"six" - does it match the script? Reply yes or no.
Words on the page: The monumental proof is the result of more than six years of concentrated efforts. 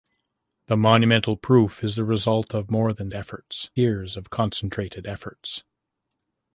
no